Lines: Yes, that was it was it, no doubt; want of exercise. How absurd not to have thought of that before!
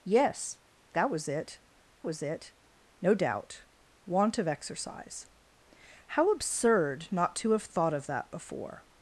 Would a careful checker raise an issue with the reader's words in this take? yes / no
no